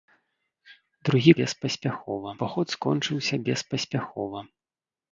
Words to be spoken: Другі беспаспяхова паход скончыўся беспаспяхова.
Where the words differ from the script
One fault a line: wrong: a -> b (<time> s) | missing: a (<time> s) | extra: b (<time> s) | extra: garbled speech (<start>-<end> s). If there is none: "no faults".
no faults